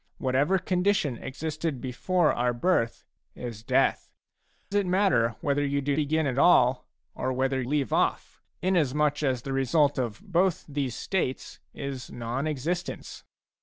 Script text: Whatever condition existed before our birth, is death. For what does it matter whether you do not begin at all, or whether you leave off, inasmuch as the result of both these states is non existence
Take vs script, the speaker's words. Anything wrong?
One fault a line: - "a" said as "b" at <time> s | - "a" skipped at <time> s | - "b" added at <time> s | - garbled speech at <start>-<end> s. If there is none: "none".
- "For what does" skipped at 4.1 s
- "not" skipped at 6.0 s
- "you" skipped at 7.6 s